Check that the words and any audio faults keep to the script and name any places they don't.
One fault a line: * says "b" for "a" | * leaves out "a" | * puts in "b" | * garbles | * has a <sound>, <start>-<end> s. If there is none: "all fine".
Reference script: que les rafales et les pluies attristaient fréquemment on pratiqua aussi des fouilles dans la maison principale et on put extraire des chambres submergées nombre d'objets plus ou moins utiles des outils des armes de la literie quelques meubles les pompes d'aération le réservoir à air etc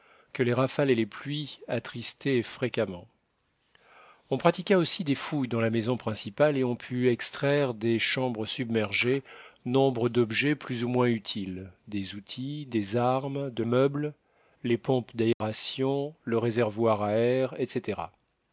* leaves out "la literie quelques"
* has a dropout, 15.3-15.4 s